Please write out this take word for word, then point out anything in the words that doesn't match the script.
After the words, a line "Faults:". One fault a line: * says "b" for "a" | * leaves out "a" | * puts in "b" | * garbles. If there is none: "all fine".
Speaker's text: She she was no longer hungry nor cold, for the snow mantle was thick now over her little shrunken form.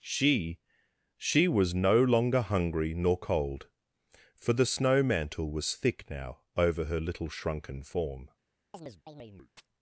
She she was no longer hungry nor cold, for the snow mantle was thick now over her little shrunken form.
Faults:
all fine